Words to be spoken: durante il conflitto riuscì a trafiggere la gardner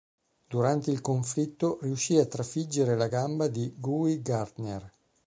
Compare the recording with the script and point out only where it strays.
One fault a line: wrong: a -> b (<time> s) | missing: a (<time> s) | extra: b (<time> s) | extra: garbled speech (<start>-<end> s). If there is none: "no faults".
extra: gamba di guy (3.1 s)